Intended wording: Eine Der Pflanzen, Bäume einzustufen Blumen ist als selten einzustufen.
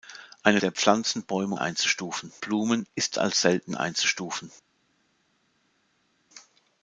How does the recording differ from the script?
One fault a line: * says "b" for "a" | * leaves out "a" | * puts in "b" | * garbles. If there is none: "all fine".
all fine